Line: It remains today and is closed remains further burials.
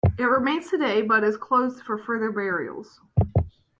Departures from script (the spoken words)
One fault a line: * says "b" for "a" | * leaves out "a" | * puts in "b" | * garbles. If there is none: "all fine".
* says "but" for "and"
* says "for" for "remains"